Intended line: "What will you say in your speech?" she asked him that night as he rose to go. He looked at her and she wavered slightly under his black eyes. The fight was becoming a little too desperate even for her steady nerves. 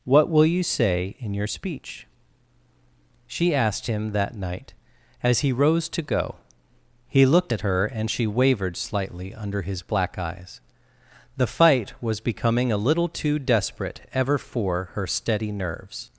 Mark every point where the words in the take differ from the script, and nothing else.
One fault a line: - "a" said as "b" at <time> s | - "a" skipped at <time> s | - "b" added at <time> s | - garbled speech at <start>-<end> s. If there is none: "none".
- "even" said as "ever" at 14.1 s